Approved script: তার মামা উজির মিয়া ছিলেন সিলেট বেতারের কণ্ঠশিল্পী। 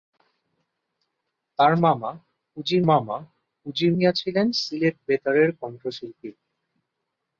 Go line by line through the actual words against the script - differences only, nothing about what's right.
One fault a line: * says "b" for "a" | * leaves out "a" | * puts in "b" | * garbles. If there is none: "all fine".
* puts in "মামা উজির"